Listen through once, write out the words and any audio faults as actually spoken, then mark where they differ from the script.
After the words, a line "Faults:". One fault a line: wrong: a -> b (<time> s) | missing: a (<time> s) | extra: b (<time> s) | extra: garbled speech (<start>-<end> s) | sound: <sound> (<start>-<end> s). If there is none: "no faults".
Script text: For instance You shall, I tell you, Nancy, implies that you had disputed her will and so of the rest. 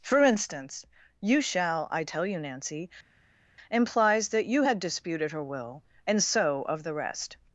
For instance You shall, I tell you, Nancy, implies that you had disputed her will and so of the rest.
Faults:
no faults